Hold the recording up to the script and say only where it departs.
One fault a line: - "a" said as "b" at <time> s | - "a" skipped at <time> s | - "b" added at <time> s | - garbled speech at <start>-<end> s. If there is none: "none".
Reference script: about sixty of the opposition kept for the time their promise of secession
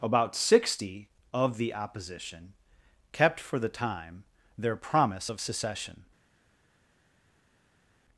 none